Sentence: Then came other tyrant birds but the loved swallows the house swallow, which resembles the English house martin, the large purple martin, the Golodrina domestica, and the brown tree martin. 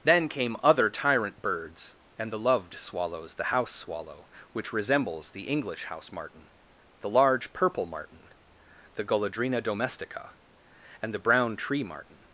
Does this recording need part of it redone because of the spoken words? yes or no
yes